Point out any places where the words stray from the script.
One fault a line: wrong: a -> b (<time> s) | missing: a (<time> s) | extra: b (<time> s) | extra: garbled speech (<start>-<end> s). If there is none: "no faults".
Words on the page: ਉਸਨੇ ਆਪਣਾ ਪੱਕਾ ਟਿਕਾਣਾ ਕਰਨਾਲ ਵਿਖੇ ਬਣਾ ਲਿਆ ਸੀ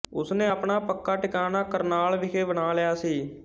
no faults